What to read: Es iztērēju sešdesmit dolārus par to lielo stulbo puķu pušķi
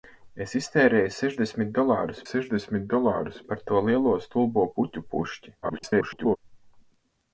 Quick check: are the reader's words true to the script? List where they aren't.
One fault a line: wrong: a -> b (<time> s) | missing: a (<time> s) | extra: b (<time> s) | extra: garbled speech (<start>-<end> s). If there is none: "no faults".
extra: sešdesmit dolārus (2.3 s)
extra: garbled speech (5.6-6.4 s)